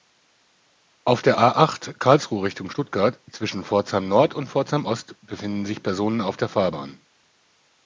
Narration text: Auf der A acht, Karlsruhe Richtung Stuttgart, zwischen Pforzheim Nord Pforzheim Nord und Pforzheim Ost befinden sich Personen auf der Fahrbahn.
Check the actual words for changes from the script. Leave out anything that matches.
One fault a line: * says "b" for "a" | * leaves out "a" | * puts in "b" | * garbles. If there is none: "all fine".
* leaves out "Pforzheim Nord"